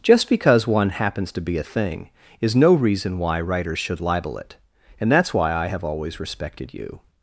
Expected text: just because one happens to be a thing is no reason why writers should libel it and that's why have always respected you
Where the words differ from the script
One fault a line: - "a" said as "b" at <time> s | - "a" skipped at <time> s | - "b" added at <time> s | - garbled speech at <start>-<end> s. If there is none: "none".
- "i" added at 5.5 s